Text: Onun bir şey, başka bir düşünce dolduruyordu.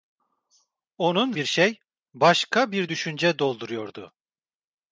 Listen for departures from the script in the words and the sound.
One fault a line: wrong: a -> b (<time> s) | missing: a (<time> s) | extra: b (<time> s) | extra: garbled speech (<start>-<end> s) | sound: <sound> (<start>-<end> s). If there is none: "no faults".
no faults